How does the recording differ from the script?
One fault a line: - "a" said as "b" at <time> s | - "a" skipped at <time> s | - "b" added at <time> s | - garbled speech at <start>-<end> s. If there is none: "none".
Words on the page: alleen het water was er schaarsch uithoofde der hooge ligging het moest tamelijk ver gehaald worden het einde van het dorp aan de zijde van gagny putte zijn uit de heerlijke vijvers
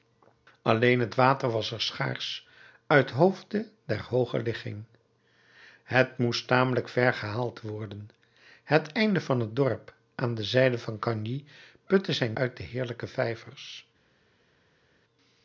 none